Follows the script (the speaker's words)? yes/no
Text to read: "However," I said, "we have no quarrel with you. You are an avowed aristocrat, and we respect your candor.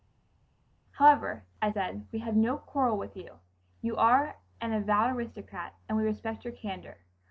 yes